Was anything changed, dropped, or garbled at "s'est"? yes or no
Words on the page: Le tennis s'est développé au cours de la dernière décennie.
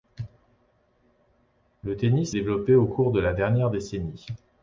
yes